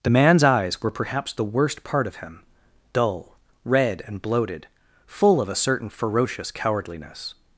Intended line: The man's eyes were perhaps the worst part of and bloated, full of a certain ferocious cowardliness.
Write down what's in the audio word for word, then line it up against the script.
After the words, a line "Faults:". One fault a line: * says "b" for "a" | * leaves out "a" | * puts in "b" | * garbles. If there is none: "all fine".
The man's eyes were perhaps the worst part of him dull, red, and bloated, full of a certain ferocious cowardliness.
Faults:
* puts in "him dull red"